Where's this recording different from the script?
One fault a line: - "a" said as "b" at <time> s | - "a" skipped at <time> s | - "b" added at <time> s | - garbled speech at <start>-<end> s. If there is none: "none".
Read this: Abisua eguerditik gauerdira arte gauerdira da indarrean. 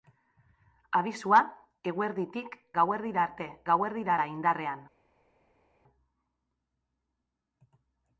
none